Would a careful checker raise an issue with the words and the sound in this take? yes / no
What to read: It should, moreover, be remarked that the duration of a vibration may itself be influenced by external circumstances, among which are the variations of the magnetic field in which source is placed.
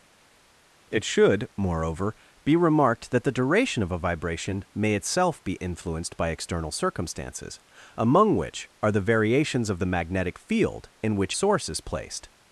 no